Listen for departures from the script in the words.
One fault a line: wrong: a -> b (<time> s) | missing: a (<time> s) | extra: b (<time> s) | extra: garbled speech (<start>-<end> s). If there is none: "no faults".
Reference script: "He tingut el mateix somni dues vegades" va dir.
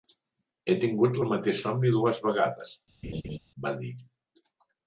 no faults